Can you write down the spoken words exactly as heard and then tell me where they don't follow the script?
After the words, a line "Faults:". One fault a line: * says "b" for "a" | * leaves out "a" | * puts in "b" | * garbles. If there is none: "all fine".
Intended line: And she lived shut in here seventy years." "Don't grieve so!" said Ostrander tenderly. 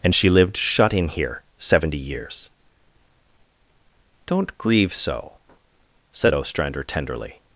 And she lived shut in here seventy years." "Don't grieve so!" said Ostrander tenderly.
Faults:
all fine